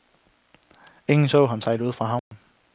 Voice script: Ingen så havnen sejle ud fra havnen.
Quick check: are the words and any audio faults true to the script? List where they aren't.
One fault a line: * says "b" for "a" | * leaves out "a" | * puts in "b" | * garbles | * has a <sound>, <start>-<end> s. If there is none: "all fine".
* says "ham" for "havnen"
* has a dropout, 2.2-2.3 s